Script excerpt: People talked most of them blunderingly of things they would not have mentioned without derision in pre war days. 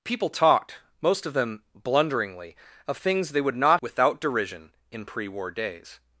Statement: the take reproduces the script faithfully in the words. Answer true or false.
false